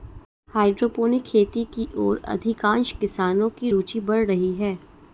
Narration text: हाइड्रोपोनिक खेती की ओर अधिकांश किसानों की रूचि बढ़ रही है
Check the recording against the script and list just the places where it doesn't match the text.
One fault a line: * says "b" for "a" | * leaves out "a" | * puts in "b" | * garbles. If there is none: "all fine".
all fine